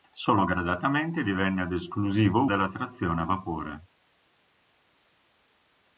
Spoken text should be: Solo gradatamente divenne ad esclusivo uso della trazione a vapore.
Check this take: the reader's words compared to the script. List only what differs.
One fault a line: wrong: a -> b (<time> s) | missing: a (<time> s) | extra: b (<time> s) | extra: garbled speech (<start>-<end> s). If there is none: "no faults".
missing: uso (2.4 s)